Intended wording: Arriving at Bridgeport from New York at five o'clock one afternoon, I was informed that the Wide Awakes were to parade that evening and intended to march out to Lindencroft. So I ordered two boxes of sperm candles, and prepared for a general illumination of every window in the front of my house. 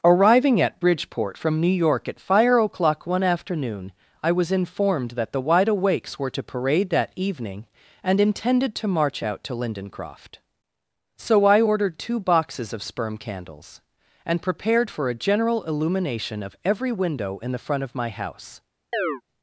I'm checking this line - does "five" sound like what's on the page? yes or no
no